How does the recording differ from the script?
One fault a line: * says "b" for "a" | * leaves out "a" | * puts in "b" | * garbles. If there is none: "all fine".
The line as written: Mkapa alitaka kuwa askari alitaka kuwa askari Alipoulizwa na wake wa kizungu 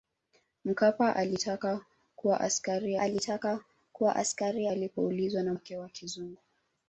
all fine